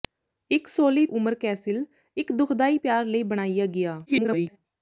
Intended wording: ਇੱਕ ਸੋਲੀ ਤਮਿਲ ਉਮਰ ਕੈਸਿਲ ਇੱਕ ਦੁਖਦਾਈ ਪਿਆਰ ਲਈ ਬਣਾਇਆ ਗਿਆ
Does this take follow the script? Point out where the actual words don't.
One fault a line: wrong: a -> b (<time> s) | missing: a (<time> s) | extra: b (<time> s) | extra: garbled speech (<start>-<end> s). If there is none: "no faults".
missing: ਤਮਿਲ (1.1 s)
extra: garbled speech (4.1-4.6 s)